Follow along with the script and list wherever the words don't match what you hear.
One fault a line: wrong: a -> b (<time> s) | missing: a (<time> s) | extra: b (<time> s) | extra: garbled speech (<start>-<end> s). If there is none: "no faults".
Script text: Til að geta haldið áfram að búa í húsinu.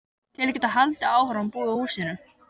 no faults